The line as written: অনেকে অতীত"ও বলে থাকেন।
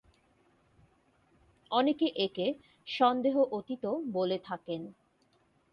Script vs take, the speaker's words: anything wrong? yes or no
yes